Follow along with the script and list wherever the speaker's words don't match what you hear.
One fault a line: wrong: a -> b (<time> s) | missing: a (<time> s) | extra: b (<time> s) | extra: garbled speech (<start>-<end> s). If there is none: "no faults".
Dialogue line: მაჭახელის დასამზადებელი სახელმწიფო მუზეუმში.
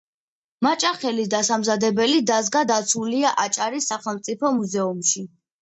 extra: დაზგა დაცულია აჭარის (2.3 s)